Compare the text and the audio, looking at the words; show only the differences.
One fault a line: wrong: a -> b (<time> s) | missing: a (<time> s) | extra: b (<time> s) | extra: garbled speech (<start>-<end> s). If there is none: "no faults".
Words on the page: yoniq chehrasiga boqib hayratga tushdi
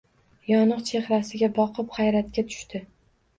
no faults